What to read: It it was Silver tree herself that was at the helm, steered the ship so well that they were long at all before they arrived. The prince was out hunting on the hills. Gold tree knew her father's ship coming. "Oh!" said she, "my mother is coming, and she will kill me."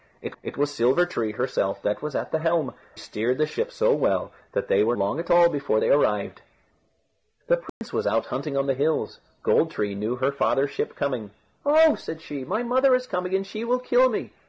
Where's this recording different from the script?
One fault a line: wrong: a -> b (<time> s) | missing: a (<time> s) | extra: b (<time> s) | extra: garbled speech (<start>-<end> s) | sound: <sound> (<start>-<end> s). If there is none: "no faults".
sound: dropout (7.7-7.8 s)